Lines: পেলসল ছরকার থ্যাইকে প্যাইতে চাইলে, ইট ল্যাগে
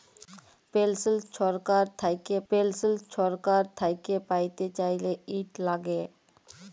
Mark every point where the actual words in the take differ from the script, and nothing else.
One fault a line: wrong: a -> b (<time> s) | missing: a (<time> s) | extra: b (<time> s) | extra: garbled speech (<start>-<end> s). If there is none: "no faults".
extra: পেলসল ছরকার থ্যাইকে (2.5 s)